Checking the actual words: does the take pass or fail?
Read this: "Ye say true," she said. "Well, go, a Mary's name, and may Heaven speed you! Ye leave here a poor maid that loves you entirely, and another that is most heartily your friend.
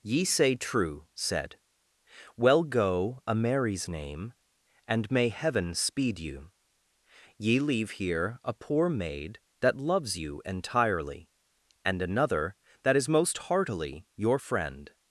fail